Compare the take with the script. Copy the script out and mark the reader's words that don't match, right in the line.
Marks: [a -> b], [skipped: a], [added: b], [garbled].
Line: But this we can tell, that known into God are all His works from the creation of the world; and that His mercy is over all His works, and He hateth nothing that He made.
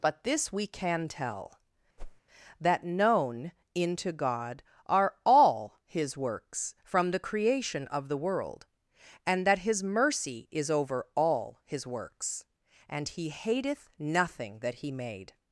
But this we can tell, that known into God are all His works from the creation of the world; and that His mercy is over all His works, and He hateth nothing that He made.